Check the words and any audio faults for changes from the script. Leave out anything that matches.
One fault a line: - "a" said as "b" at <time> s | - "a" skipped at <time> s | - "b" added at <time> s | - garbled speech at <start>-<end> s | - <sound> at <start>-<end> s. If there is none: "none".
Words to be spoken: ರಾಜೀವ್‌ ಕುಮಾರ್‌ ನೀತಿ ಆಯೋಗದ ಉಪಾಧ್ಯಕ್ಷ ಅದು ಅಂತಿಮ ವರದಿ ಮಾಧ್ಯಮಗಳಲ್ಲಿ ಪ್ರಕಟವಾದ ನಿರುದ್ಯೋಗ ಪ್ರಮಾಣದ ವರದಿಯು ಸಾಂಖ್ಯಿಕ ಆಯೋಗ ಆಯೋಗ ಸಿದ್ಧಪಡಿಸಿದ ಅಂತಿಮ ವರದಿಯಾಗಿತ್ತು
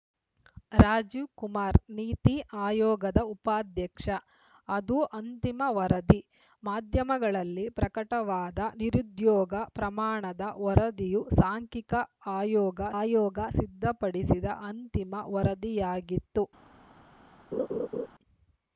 - laugh at 17.5-18.1 s